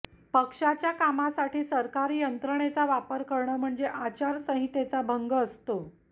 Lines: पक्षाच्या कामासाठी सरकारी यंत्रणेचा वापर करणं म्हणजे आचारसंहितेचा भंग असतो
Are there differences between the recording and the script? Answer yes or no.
no